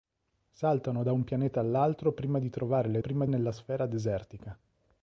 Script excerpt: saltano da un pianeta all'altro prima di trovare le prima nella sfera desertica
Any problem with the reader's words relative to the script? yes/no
no